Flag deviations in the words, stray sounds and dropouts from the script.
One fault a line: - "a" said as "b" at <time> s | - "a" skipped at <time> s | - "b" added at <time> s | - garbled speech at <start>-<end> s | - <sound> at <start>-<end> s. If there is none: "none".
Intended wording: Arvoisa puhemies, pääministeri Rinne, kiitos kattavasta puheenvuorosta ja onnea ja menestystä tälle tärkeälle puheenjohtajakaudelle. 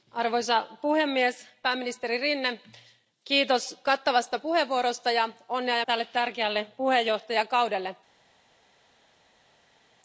- "menestystä" skipped at 5.8 s